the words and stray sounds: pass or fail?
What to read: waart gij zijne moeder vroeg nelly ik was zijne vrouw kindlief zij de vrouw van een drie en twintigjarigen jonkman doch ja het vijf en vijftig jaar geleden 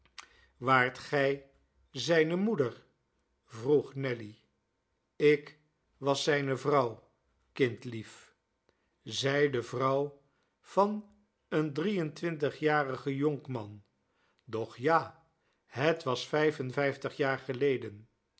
fail